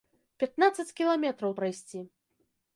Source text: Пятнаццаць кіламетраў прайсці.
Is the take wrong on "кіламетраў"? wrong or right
right